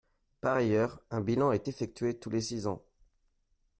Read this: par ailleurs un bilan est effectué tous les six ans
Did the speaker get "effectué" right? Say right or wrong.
right